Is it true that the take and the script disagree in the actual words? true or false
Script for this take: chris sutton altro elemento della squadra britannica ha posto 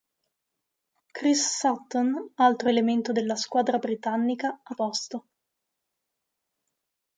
false